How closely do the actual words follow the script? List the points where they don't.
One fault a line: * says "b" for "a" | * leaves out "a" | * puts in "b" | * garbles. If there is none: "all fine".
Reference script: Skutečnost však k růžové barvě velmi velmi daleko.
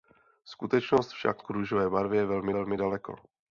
all fine